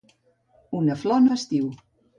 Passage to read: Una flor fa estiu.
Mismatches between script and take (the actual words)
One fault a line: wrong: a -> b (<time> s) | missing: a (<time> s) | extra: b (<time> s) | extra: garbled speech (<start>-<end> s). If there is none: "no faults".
no faults